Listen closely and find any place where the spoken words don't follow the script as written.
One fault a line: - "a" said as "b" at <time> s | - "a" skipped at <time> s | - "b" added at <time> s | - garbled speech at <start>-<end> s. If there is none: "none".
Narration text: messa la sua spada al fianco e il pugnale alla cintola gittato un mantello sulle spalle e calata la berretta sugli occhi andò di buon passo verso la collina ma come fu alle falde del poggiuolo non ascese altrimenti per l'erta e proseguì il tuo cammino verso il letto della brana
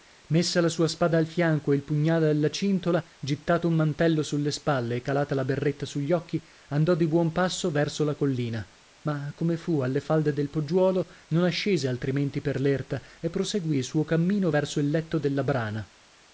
- "tuo" said as "suo" at 13.8 s